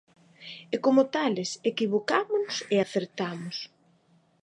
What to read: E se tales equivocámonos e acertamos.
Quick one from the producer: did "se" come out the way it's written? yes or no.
no